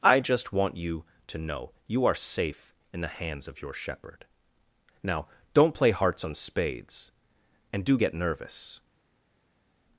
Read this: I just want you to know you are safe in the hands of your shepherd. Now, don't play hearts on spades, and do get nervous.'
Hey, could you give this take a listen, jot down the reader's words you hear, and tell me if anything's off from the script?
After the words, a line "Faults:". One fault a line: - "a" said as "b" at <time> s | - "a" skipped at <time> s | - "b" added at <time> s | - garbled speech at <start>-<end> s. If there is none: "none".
I just want you to know you are safe in the hands of your shepherd. Now, don't play hearts on spades, and do get nervous.'
Faults:
none